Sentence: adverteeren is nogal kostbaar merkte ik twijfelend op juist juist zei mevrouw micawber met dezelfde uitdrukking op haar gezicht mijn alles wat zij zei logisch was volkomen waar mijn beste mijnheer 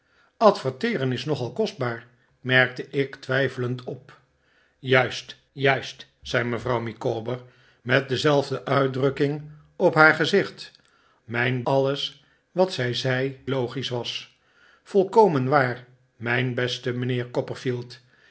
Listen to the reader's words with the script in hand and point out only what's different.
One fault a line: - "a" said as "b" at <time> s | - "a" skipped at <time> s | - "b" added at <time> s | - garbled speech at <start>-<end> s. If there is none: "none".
none